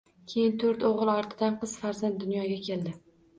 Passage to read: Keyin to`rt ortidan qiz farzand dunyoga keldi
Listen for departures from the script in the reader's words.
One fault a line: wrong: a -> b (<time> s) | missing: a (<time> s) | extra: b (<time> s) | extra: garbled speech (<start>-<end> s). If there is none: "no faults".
extra: o`g`il (0.9 s)